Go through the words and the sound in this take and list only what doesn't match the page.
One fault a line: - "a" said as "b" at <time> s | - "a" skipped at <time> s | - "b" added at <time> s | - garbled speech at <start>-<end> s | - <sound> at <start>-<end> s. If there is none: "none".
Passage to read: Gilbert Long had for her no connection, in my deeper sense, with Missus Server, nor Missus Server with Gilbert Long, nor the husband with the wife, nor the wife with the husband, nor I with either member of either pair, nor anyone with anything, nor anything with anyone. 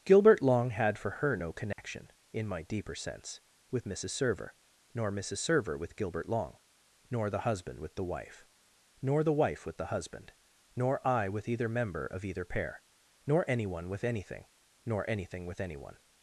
- dropout at 1.7-1.8 s